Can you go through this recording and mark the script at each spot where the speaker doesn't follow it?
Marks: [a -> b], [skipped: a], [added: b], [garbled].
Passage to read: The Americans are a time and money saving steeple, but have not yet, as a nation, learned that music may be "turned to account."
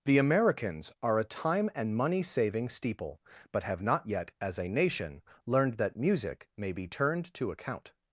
The Americans are a time and money saving steeple, but have not yet, as a nation, learned that music may be "turned to account."